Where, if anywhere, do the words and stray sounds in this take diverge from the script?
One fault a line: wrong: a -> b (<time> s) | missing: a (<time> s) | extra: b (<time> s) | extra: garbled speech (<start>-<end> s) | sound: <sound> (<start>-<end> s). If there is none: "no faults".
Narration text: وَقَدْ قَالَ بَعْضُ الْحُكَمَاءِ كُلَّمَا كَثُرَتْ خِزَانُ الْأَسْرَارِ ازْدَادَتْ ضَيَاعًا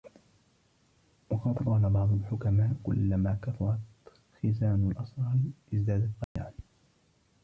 sound: dropout (6.2-6.4 s)